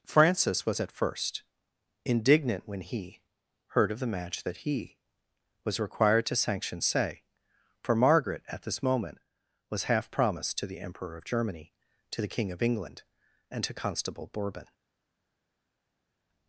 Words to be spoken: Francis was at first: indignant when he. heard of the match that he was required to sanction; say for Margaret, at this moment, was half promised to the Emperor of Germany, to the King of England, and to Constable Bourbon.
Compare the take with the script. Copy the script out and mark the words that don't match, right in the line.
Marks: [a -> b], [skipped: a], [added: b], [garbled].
Francis was at first: indignant when he. heard of the match that he was required to sanction; say for Margaret, at this moment, was half promised to the Emperor of Germany, to the King of England, and to Constable Bourbon.